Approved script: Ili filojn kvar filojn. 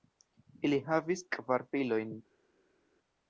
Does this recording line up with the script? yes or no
no